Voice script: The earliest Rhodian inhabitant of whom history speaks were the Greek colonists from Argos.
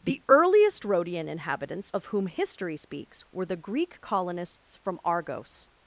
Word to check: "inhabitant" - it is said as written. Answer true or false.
false